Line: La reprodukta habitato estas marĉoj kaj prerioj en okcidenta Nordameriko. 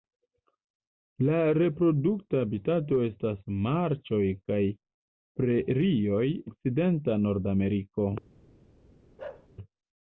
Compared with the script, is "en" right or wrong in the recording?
wrong